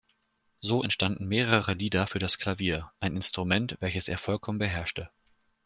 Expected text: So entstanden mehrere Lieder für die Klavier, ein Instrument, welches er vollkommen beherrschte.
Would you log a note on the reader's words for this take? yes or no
yes